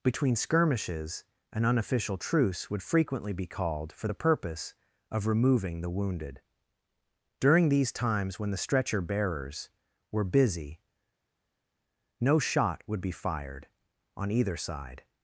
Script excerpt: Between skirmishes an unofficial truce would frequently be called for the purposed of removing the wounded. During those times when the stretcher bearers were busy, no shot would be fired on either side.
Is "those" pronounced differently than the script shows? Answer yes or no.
yes